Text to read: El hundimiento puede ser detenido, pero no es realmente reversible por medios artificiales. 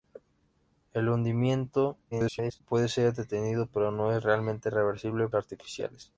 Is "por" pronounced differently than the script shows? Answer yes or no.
yes